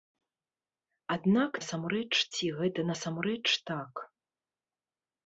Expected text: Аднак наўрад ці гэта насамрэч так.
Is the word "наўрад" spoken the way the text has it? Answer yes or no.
no